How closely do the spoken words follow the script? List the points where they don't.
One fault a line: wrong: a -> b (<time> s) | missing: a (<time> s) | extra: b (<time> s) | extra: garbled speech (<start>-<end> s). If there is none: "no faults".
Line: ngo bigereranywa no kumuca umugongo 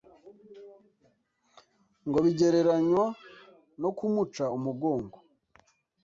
no faults